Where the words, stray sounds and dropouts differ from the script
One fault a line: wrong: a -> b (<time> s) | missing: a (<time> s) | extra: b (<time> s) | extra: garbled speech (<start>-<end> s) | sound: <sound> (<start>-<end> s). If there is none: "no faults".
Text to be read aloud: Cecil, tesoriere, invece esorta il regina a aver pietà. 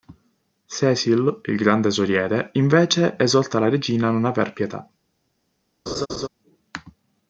extra: il gran (1.4 s)
wrong: il -> la (3.6 s)
extra: non (4.1 s)
sound: laugh (5.9-6.3 s)